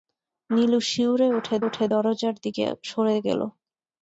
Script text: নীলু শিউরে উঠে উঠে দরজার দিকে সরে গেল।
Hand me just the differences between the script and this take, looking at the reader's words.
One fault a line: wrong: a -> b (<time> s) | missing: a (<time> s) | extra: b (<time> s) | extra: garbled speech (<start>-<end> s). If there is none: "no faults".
no faults